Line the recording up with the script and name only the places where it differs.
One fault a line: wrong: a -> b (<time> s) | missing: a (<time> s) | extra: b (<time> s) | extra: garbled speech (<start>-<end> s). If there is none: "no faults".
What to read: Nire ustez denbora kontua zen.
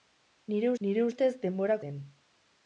extra: nire (0.9 s)
missing: kontua (1.8 s)